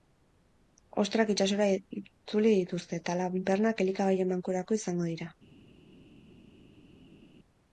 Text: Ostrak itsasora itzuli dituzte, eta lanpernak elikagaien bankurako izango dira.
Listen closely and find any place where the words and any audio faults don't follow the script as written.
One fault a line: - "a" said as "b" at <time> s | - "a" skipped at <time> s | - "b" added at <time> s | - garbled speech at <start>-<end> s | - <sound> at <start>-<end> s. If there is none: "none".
none